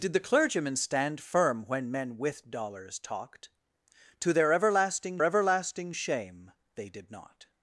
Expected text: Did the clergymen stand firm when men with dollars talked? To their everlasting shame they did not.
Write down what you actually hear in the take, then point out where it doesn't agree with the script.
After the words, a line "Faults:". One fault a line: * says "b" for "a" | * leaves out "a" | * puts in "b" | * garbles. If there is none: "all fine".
Did the clergymen stand firm when men with dollars talked? To their everlasting everlasting shame they did not.
Faults:
* puts in "everlasting"